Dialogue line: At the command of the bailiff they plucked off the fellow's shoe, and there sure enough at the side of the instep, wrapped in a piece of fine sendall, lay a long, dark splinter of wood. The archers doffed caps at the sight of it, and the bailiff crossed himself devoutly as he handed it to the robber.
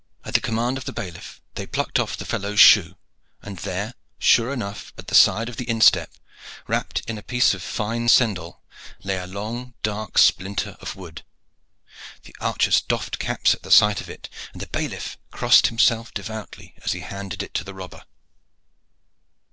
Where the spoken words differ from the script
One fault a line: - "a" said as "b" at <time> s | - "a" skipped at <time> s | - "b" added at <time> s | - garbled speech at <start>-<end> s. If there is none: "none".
none